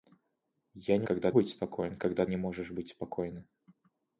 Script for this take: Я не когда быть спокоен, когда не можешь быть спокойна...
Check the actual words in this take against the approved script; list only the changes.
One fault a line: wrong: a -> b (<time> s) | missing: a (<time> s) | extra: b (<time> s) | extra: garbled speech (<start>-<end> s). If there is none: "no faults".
no faults